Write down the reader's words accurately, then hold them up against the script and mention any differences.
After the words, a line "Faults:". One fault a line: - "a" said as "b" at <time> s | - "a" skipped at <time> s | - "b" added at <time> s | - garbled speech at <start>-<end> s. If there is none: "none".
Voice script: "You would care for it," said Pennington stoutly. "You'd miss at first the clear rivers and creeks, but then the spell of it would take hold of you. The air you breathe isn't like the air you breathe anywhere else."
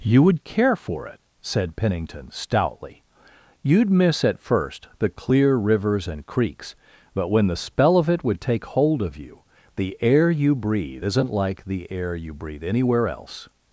"You would care for it," said Pennington stoutly. "You'd miss at first the clear rivers and creeks, but when the spell of it would take hold of you. The air you breathe isn't like the air you breathe anywhere else."
Faults:
- "then" said as "when" at 7.3 s